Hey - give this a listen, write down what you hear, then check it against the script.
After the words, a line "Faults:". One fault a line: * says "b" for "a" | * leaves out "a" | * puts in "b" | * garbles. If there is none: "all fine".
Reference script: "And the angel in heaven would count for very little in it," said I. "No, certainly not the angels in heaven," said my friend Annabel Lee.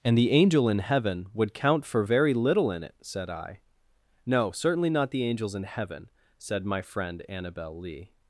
"And the angel in heaven would count for very little in it," said I. "No, certainly not the angels in heaven," said my friend Annabel Lee.
Faults:
all fine